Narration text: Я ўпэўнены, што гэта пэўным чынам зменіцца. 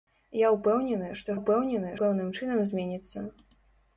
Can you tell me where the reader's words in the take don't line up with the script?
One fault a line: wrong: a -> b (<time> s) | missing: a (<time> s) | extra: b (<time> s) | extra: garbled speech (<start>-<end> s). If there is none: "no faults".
wrong: гэта -> ўпэўнены (1.4 s)